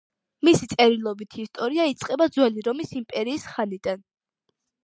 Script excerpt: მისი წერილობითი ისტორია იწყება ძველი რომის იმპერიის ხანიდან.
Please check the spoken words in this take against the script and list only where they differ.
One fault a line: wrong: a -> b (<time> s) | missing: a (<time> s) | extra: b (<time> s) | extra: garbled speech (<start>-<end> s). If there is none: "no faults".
no faults